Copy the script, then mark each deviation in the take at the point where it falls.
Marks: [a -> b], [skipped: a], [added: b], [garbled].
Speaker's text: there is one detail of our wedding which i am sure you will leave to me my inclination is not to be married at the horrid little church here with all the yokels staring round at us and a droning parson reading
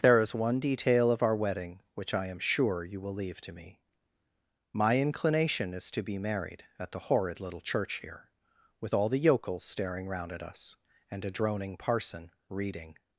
there is one detail of our wedding which i am sure you will leave to me my inclination is [skipped: not] to be married at the horrid little church here with all the yokels staring round at us and a droning parson reading